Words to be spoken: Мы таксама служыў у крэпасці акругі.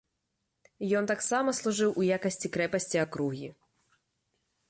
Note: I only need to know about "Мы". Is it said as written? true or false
false